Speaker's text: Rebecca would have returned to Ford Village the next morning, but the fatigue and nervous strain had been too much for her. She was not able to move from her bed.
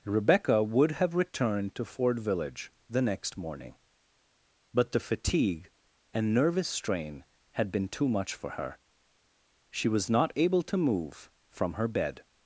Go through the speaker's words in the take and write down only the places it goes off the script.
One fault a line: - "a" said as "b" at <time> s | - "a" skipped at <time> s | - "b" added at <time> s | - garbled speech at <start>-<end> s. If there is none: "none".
none